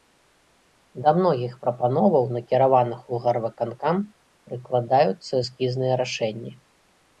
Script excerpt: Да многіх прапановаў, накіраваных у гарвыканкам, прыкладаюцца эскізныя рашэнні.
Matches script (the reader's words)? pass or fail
pass